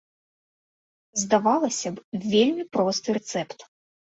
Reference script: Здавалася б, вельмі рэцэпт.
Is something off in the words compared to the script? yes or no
yes